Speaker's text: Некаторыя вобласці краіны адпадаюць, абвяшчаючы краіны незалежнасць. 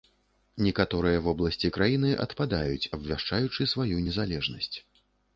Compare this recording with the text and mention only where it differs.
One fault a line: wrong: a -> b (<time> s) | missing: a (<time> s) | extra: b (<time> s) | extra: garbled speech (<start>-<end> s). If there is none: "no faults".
wrong: краіны -> сваю (3.7 s)